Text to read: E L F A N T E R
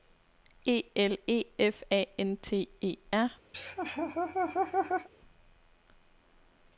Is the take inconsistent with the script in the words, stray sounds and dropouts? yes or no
yes